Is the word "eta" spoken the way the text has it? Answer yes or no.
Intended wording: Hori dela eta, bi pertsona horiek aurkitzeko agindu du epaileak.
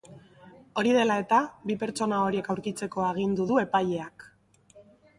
yes